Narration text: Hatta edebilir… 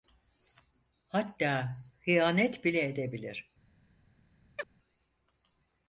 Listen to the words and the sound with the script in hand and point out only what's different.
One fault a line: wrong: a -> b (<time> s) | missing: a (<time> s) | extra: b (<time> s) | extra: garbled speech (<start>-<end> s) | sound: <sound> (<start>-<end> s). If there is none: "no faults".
extra: hıyanet bile (2.0 s)
sound: chirp (4.6-4.7 s)